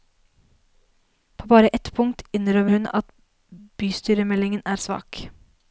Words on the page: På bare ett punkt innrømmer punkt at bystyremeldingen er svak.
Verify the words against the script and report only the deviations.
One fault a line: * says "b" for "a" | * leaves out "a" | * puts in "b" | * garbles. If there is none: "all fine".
* says "hun" for "punkt"